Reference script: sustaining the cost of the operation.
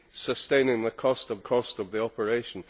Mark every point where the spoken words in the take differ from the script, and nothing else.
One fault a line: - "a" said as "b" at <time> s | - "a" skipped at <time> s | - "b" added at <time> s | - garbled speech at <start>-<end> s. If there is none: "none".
- "cost of" added at 1.4 s